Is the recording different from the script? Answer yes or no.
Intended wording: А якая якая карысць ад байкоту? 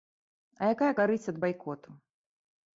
yes